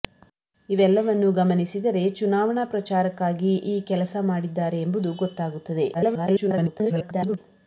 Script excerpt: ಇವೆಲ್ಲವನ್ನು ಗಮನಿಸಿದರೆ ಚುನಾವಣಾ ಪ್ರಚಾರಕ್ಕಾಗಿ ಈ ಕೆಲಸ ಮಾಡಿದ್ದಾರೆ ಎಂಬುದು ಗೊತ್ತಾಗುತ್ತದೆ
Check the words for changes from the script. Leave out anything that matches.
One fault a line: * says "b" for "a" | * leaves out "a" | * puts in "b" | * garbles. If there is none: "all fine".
* garbles